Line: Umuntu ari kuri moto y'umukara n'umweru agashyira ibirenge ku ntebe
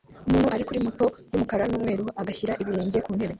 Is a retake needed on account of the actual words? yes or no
no